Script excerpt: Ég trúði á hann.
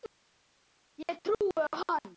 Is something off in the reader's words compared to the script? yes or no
no